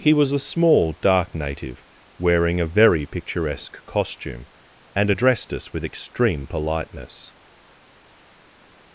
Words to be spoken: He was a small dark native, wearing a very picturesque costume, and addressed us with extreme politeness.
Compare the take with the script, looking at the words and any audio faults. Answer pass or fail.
pass